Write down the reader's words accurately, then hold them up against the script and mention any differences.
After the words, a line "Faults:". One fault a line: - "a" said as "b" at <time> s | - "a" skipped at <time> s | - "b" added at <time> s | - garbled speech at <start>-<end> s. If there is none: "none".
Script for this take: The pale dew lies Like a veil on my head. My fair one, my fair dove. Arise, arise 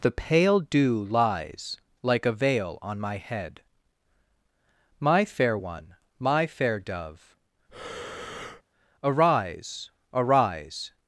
The pale dew lies Like a veil on my head. My fair one, my fair dove. Arise, arise
Faults:
none